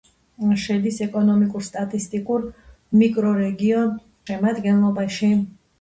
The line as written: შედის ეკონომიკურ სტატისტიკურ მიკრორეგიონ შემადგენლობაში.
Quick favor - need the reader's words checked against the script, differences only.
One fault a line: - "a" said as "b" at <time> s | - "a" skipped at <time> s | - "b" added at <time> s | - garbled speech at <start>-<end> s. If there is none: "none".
none